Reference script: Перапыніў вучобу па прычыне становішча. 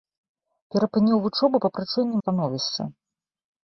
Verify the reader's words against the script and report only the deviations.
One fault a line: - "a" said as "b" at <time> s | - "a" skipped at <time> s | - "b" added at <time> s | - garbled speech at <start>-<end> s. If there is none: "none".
none